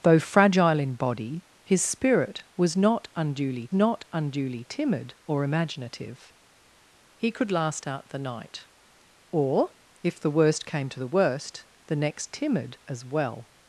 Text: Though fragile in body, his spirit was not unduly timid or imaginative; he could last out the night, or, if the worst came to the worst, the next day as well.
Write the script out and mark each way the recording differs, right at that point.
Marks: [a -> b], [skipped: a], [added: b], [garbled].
Though fragile in body, his spirit was not unduly [added: not unduly] timid or imaginative; he could last out the night, or, if the worst came to the worst, the next [day -> timid] as well.